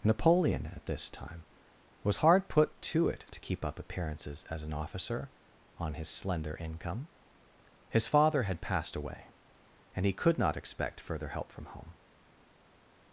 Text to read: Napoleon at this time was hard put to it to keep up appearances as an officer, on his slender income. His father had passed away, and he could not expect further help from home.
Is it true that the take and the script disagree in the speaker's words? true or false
false